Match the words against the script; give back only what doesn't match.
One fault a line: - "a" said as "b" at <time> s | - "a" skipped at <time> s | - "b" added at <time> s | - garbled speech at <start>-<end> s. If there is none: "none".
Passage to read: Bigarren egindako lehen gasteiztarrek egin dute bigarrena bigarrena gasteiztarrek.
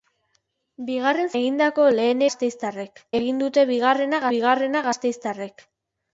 none